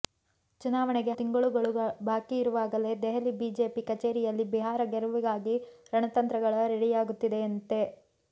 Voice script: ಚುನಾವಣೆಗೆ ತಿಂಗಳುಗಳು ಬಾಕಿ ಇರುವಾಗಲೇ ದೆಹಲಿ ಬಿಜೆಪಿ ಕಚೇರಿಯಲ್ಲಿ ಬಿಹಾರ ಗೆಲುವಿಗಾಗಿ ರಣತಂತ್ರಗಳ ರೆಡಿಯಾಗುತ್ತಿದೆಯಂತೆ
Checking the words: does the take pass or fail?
pass